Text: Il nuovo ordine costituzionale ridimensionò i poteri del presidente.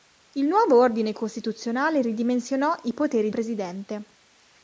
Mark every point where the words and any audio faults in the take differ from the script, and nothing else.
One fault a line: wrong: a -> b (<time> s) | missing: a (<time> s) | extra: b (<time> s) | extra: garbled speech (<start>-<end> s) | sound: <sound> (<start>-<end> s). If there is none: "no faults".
missing: del (3.3 s)